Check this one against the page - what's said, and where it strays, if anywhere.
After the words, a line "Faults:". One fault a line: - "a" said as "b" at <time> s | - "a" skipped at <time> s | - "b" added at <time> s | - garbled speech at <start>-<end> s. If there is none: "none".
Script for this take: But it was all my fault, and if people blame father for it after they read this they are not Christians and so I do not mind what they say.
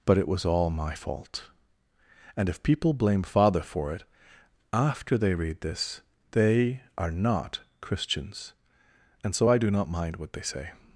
But it was all my fault, and if people blame father for it after they read this they are not Christians and so I do not mind what they say.
Faults:
none